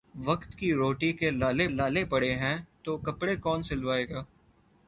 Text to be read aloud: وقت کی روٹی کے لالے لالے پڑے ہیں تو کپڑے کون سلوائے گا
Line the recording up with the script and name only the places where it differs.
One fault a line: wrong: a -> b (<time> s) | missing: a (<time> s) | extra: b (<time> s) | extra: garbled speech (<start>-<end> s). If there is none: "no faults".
no faults